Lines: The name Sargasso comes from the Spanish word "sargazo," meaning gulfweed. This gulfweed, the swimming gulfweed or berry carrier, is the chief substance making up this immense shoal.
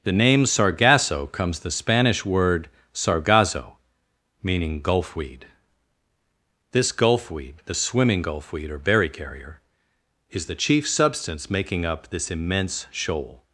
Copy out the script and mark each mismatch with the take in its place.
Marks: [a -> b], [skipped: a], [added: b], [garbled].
The name Sargasso comes [skipped: from] the Spanish word "sargazo," meaning gulfweed. This gulfweed, the swimming gulfweed or berry carrier, is the chief substance making up this immense shoal.